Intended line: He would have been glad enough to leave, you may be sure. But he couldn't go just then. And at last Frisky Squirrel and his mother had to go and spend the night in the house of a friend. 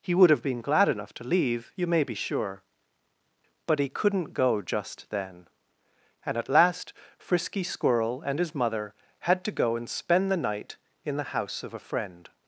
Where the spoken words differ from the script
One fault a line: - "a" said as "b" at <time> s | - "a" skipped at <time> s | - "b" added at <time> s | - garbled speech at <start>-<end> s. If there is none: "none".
none